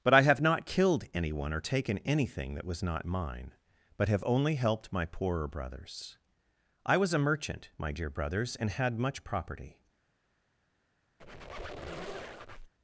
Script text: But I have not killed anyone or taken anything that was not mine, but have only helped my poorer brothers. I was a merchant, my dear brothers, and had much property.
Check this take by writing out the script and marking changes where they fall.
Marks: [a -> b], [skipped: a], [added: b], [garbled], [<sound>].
But I have not killed anyone or taken anything that was not mine, but have only helped my poorer brothers. I was a merchant, my dear brothers, and had much property. [squeak]